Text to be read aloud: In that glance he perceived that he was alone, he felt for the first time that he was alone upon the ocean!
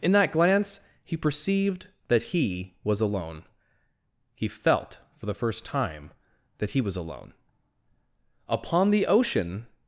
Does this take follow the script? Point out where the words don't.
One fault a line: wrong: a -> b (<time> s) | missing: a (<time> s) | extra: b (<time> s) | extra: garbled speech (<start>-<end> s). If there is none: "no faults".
no faults